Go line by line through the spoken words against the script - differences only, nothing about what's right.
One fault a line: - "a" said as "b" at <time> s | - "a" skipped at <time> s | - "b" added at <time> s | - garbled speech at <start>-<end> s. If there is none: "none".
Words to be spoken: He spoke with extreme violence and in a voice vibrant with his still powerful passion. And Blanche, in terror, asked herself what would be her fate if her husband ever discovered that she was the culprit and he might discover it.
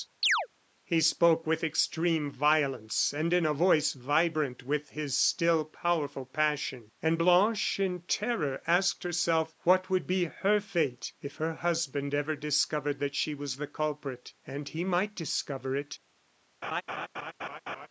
none